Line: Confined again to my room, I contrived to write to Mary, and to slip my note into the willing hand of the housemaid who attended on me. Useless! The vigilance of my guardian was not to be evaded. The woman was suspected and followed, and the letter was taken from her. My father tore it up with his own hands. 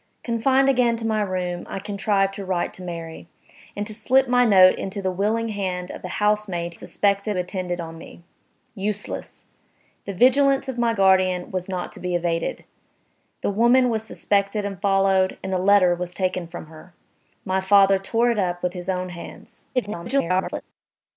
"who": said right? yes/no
no